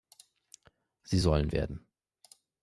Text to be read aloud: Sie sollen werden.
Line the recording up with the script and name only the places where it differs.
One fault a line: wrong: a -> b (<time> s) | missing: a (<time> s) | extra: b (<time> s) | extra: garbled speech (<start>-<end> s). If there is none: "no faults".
no faults